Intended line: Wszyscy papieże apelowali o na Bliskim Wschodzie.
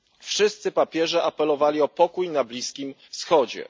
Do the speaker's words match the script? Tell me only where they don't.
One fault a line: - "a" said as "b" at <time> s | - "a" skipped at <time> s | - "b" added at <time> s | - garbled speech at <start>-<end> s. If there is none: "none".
- "pokój" added at 1.8 s